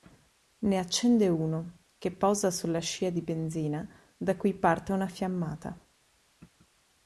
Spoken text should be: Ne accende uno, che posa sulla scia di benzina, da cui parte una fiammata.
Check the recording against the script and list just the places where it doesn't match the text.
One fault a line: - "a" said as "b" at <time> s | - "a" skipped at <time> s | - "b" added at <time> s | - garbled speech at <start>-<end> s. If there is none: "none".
none